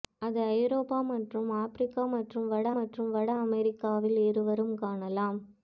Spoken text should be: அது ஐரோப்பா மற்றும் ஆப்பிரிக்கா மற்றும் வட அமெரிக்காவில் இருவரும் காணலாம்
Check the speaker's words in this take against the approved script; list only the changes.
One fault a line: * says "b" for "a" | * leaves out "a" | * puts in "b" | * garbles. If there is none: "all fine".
* puts in "மற்றும் வட"